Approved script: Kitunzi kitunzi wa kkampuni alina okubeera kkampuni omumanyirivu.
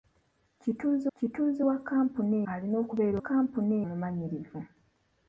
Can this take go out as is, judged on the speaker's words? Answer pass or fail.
pass